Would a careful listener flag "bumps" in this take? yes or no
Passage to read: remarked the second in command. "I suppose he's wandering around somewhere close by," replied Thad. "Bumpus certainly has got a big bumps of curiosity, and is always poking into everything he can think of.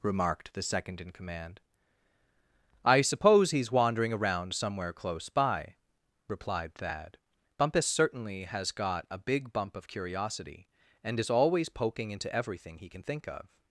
yes